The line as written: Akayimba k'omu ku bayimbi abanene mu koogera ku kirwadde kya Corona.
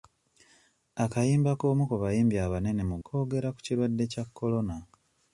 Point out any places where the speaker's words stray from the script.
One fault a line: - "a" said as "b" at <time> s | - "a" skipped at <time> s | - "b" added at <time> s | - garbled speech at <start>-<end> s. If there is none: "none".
none